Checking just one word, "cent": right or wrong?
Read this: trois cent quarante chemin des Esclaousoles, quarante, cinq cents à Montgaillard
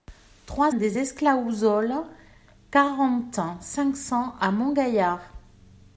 wrong